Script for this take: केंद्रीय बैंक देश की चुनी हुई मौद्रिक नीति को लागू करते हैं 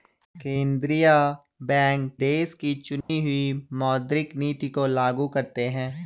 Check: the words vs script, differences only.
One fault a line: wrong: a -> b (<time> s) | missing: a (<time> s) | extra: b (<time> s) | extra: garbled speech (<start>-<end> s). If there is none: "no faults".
no faults